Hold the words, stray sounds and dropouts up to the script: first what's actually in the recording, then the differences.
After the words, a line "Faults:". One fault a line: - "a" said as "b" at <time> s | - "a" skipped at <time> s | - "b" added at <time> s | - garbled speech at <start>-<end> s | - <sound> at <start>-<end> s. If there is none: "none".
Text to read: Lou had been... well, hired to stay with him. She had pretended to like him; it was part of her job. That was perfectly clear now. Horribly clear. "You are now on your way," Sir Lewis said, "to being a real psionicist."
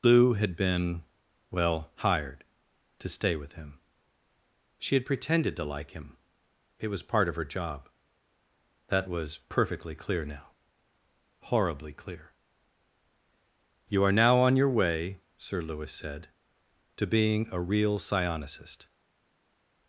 Lou had been... well, hired to stay with him. She had pretended to like him; it was part of her job. That was perfectly clear now. Horribly clear. "You are now on your way," Sir Lewis said, "to being a real psionicist."
Faults:
none